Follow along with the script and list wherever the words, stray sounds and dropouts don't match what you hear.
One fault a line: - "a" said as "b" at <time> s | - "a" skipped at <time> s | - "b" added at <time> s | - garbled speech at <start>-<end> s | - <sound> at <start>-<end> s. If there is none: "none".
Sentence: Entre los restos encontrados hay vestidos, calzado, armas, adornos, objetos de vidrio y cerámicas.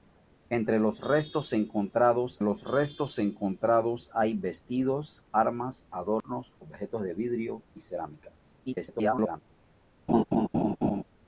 - "los restos encontrados" added at 2.4 s
- "calzado" skipped at 5.2 s
- dropout at 6.2-6.2 s
- garbled speech at 8.7-9.4 s
- laugh at 10.1-11.0 s